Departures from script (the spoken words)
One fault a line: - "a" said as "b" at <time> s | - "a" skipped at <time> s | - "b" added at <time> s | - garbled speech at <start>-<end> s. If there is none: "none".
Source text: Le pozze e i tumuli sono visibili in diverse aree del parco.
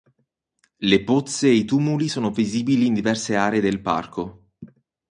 none